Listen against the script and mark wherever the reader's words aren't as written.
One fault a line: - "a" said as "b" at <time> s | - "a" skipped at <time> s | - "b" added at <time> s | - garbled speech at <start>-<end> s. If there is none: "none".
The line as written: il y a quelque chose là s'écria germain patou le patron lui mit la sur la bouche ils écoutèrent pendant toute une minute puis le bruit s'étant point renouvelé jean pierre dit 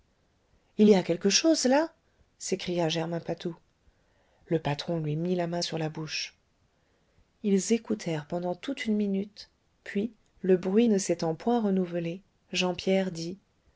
- "main" added at 5.5 s
- "ne" added at 10.9 s